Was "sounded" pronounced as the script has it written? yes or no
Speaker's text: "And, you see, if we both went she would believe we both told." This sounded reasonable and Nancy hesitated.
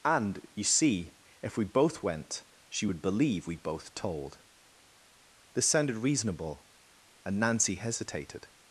yes